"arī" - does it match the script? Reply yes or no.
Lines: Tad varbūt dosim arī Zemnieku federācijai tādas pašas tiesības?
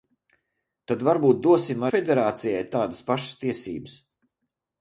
no